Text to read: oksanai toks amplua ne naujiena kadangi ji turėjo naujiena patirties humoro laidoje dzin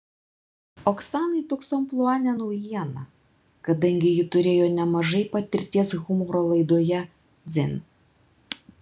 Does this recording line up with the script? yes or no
no